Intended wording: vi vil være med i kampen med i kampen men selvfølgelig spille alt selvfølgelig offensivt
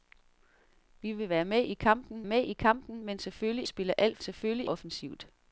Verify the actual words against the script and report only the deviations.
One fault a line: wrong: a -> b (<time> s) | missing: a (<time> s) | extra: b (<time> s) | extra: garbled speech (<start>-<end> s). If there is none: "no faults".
no faults